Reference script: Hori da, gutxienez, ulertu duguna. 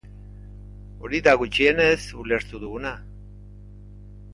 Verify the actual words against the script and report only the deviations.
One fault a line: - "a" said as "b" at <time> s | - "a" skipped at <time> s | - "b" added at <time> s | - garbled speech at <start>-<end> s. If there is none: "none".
none